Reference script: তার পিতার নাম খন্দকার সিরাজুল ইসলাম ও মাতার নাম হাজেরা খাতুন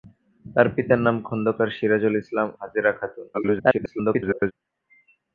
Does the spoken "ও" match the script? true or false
false